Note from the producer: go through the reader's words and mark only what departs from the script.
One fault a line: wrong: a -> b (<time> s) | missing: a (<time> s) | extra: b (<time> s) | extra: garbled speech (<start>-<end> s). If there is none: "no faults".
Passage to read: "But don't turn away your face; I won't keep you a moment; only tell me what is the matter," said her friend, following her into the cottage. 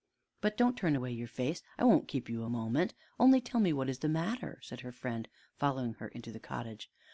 no faults